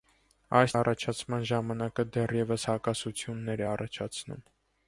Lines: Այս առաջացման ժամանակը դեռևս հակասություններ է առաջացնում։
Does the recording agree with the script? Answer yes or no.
yes